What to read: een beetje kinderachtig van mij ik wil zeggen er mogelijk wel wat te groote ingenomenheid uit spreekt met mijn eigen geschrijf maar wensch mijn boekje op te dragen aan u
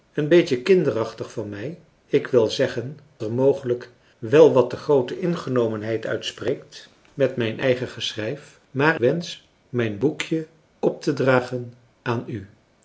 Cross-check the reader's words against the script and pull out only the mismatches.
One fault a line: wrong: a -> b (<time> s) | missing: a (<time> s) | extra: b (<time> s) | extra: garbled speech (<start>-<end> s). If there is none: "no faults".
no faults